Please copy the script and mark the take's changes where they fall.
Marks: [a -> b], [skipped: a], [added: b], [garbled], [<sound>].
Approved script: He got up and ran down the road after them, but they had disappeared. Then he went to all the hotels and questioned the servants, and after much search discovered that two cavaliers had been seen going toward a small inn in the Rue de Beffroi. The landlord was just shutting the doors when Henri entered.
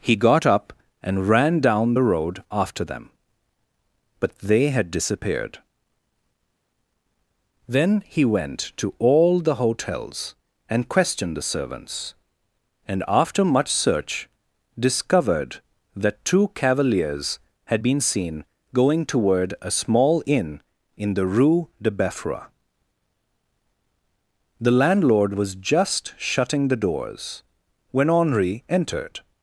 He got up and ran down the road after them, but they had disappeared. Then he went to all the hotels and questioned the servants, and after much search discovered that two cavaliers had been seen going toward a small inn in the Rue de Beffroi. The landlord was just shutting the doors when Henri entered.